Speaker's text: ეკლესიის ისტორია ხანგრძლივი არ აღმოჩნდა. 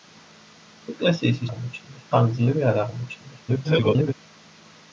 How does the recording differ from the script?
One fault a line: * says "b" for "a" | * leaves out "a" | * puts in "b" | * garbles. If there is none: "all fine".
* says "აღმოჩნდა" for "ისტორია"
* garbles